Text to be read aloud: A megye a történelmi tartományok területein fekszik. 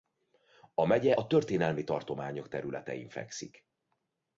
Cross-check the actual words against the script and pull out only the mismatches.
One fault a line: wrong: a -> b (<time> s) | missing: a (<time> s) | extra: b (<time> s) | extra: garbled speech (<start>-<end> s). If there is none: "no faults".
no faults